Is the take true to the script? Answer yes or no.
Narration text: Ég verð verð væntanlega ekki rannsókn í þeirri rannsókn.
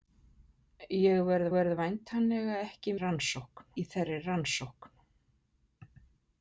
yes